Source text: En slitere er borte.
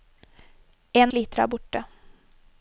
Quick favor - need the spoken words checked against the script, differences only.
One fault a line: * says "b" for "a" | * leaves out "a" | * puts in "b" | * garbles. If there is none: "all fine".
all fine